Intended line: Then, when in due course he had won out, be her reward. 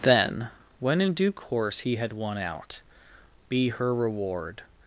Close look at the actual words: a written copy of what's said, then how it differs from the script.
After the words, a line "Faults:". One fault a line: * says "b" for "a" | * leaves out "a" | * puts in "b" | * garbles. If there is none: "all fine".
Then, when in due course he had won out, be her reward.
Faults:
all fine